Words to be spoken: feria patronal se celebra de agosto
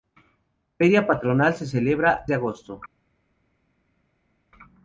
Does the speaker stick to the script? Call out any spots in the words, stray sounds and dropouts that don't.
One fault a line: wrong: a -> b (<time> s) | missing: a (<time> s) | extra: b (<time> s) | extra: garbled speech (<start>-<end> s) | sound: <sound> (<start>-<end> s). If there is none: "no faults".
no faults